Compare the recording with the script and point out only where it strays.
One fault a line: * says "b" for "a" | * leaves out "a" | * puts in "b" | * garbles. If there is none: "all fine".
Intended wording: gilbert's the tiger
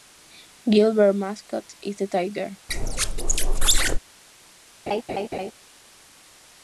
* puts in "mascot is"